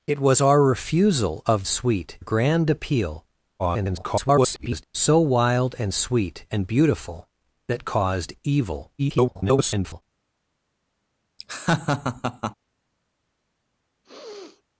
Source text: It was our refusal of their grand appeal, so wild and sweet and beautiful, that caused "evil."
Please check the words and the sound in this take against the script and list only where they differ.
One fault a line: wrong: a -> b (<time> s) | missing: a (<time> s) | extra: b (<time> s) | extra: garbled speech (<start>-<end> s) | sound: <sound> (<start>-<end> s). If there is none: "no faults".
wrong: their -> sweet (1.7 s)
extra: garbled speech (3.6-4.8 s)
extra: garbled speech (9.0-10.0 s)
sound: laugh (11.4-12.5 s)
sound: sneeze (14.0-14.6 s)